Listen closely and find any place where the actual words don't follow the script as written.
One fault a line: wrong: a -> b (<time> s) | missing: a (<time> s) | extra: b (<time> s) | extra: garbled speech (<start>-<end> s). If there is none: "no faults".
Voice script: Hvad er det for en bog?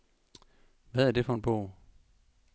no faults